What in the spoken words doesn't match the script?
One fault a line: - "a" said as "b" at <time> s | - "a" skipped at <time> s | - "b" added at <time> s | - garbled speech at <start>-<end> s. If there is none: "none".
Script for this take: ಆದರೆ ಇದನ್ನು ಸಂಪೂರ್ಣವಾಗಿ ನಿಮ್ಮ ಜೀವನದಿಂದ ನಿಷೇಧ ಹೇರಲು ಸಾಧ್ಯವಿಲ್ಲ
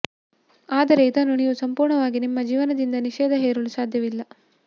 - "ನೀವು" added at 1.4 s